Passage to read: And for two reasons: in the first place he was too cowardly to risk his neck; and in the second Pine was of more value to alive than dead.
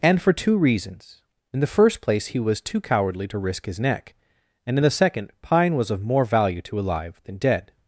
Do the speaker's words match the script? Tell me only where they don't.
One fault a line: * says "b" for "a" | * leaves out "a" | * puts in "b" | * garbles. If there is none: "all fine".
all fine